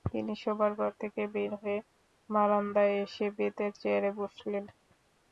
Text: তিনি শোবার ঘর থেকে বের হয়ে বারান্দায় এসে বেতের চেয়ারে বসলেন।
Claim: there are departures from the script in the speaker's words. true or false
false